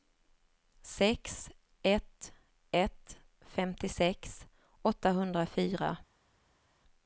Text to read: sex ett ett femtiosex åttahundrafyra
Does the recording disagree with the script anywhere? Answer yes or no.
no